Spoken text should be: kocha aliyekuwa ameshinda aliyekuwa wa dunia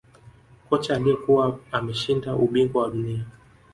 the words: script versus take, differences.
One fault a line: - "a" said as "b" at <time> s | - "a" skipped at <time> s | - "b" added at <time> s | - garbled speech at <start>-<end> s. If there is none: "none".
- "aliyekuwa" said as "ubingwa" at 2.4 s